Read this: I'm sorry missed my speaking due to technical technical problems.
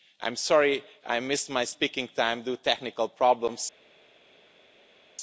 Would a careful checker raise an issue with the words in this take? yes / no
yes